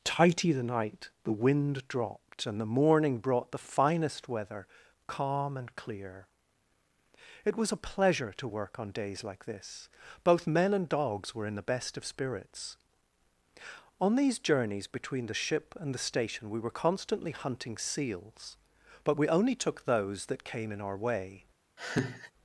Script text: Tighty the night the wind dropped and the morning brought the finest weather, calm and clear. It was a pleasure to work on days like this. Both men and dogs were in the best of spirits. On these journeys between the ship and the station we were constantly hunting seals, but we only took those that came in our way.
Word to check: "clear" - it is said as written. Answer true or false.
true